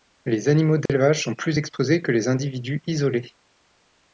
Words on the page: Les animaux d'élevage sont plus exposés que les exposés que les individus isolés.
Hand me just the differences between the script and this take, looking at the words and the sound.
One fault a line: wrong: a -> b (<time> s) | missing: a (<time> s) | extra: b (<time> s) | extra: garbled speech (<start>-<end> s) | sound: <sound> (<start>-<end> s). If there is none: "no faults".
sound: dropout (0.9-0.9 s)
missing: exposés que les (2.3 s)